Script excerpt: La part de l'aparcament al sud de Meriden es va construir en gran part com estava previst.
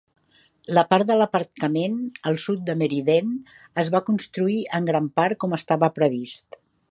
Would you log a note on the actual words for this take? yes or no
no